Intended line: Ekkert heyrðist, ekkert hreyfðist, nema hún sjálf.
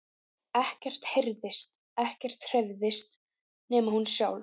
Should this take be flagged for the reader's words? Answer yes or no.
no